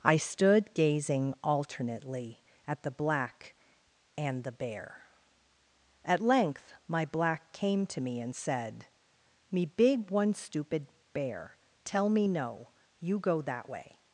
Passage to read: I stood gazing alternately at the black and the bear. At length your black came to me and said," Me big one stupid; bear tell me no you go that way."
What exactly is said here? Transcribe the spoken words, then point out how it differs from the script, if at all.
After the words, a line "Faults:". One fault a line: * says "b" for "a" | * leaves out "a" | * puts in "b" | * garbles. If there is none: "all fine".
I stood gazing alternately at the black and the bear. At length my black came to me and said," Me big one stupid; bear tell me no you go that way."
Faults:
* says "my" for "your"